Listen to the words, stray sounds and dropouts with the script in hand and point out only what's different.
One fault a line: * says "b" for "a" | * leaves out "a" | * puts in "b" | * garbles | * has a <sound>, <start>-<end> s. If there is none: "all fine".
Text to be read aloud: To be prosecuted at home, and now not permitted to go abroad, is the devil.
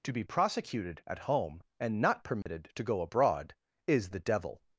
* leaves out "now"
* has a dropout, 2.4-2.5 s